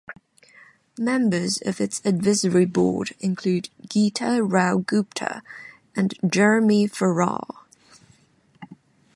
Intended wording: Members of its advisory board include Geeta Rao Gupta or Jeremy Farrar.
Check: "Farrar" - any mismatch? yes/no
no